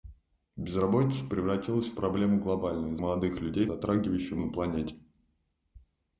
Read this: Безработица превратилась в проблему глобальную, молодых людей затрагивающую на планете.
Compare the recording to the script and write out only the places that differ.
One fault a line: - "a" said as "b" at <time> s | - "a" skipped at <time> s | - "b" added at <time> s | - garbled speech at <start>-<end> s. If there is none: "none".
none